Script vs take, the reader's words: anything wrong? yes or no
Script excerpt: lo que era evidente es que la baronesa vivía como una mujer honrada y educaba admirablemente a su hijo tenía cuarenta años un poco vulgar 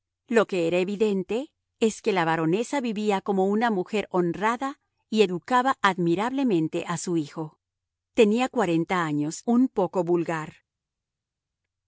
no